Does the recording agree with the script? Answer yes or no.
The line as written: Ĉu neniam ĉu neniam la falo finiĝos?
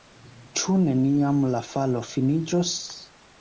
no